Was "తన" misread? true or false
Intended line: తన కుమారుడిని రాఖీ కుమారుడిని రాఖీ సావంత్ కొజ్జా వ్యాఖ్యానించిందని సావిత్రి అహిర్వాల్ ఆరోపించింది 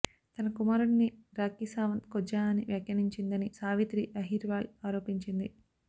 false